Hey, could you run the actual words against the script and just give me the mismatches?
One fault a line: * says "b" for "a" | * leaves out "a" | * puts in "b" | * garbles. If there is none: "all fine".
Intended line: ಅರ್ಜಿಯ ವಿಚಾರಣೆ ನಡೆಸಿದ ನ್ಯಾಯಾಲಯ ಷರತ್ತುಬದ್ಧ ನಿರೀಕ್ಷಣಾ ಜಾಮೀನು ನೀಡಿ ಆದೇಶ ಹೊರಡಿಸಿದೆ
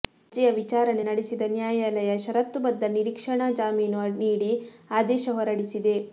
all fine